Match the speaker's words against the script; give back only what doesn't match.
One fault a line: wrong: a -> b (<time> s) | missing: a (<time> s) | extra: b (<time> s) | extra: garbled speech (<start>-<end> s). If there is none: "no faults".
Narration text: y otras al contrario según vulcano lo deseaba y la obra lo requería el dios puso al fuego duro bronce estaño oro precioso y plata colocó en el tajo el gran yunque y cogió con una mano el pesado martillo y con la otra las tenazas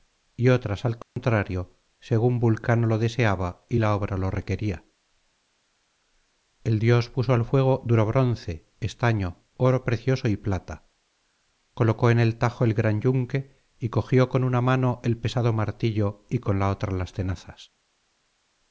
no faults